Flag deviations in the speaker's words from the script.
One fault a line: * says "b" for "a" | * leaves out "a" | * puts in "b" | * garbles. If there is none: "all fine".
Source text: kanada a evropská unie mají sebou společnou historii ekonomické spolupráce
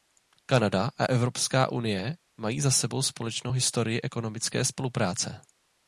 * puts in "za"